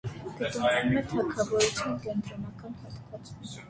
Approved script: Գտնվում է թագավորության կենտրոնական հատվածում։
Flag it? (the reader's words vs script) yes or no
no